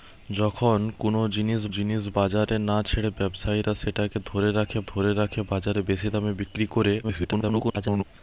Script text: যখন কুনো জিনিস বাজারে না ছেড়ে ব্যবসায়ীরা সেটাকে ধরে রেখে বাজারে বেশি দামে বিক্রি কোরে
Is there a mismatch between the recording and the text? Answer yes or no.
yes